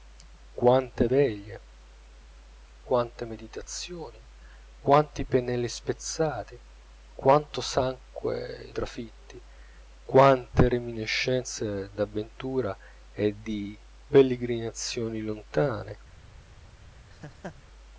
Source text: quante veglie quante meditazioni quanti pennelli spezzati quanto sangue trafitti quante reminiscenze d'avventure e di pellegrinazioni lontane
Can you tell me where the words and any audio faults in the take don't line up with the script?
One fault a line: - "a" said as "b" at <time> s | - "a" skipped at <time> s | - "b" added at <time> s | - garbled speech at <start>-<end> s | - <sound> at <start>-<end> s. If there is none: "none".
- laugh at 17.1-17.6 s